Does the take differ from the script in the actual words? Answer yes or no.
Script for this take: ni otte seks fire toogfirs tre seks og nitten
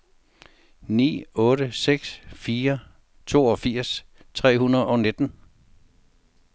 yes